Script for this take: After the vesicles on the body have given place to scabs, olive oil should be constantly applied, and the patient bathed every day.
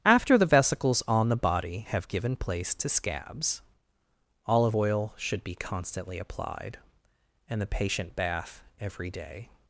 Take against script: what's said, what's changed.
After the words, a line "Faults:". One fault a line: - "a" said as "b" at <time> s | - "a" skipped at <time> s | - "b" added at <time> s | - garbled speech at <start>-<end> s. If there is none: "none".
After the vesicles on the body have given place to scabs, olive oil should be constantly applied, and the patient bath every day.
Faults:
- "bathed" said as "bath" at 8.1 s